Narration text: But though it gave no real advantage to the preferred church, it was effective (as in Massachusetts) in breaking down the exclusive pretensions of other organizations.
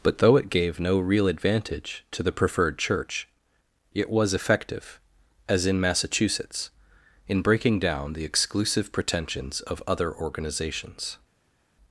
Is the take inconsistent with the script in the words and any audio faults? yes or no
no